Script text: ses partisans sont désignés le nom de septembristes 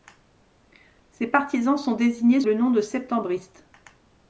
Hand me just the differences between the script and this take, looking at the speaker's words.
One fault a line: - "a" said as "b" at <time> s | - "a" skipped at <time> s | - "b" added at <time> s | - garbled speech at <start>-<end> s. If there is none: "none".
none